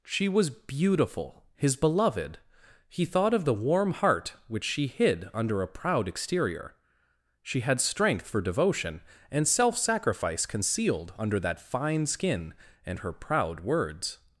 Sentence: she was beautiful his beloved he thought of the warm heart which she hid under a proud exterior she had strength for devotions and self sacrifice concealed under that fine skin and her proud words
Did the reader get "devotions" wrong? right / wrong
wrong